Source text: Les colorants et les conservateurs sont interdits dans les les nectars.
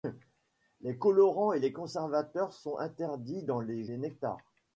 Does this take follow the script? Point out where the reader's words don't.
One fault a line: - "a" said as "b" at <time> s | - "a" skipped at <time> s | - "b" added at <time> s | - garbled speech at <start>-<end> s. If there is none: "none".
none